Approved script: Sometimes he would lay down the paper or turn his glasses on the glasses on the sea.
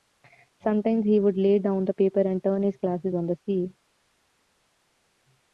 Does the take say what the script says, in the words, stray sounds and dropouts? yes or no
no